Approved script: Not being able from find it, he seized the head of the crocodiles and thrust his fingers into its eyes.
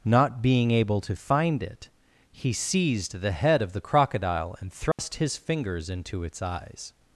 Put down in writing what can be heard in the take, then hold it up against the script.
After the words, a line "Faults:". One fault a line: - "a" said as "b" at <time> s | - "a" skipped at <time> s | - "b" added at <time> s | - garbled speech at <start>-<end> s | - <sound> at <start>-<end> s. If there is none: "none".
Not being able to find it, he seized the head of the crocodile and thrust his fingers into its eyes.
Faults:
- "from" said as "to" at 1.0 s
- "crocodiles" said as "crocodile" at 3.8 s
- dropout at 4.9-5.0 s